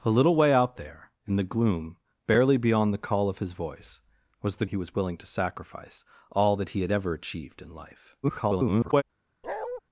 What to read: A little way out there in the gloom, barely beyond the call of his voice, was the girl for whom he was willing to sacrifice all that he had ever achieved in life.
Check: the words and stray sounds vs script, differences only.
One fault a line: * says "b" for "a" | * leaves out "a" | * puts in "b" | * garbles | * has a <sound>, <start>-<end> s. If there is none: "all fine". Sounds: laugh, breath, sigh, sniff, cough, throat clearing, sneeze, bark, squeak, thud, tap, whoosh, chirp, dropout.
* leaves out "girl for whom"
* garbles
* has a bark, 9.4-9.8 s